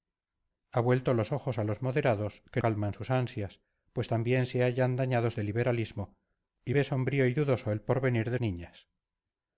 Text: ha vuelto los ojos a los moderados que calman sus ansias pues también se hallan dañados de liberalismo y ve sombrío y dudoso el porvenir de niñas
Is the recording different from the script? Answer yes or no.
no